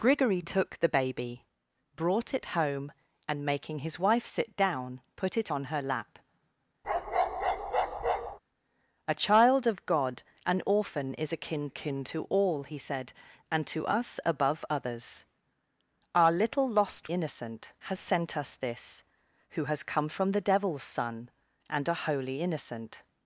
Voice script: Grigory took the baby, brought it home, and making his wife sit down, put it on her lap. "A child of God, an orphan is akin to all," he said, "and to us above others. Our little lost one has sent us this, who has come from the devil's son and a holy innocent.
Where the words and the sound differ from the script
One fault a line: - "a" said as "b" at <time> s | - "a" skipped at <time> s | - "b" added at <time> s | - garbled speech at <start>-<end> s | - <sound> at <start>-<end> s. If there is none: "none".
- bark at 6.8-8.4 s
- "akin" added at 11.7 s
- "one" said as "innocent" at 17.1 s